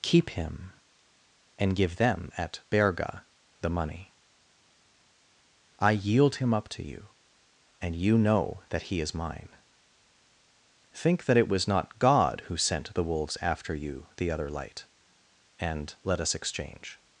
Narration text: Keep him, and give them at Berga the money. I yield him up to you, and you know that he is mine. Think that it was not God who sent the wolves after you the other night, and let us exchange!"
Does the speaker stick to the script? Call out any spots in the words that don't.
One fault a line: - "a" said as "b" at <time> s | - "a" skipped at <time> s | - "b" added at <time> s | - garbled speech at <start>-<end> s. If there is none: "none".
- "night" said as "light" at 14.5 s